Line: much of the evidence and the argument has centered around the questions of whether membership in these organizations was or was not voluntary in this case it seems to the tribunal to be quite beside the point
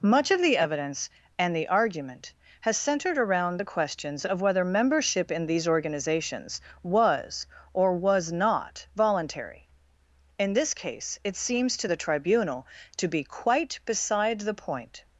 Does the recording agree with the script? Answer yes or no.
yes